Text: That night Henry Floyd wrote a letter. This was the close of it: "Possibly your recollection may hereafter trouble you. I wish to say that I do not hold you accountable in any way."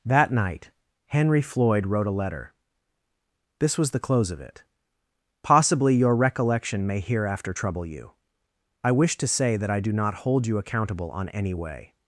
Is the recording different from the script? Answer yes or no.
yes